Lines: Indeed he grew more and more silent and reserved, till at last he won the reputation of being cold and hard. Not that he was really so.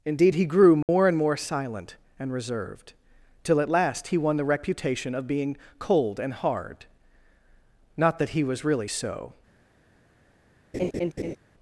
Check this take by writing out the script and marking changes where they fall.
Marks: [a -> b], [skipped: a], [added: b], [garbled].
Indeed he grew more and more silent and reserved, till at last he won the reputation of being cold and hard. Not that he was really so.